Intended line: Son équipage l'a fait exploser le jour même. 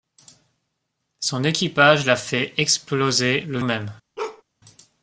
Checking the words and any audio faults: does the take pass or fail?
fail